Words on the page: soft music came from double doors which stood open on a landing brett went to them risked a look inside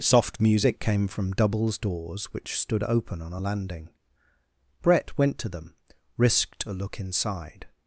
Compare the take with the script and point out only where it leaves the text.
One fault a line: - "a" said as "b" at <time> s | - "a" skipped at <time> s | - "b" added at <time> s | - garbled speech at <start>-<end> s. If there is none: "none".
- "double" said as "doubles" at 1.3 s